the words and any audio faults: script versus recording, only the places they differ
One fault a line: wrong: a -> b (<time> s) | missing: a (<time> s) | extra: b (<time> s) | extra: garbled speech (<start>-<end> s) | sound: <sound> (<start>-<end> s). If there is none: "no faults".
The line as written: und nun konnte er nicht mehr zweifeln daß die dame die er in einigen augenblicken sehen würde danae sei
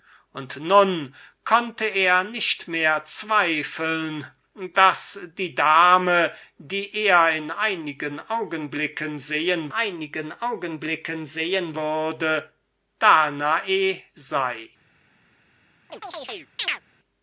extra: einigen augenblicken sehen (9.7 s)
sound: chirp (15.9-16.8 s)